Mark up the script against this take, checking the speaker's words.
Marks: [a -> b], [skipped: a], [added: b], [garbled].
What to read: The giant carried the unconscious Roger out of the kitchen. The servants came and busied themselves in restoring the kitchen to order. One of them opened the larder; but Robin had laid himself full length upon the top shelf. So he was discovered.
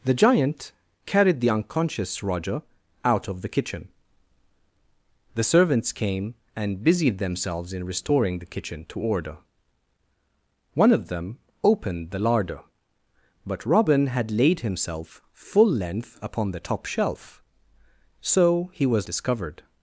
The giant carried the unconscious Roger out of the kitchen. The servants came and busied themselves in restoring the kitchen to order. One of them opened the larder; but Robin had laid himself full length upon the top shelf. So he was discovered.